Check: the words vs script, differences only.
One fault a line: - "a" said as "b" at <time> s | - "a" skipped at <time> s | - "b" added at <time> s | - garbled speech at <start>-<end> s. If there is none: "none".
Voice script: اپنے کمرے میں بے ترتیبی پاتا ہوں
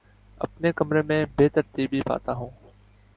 none